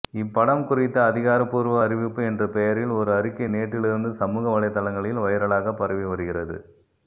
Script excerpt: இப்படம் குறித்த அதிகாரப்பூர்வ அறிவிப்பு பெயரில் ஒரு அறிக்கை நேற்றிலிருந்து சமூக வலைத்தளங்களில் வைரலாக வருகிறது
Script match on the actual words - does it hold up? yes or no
no